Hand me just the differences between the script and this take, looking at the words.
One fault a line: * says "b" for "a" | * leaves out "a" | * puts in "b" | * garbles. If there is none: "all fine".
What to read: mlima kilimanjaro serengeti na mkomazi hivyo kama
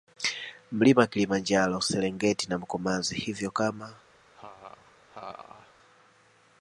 all fine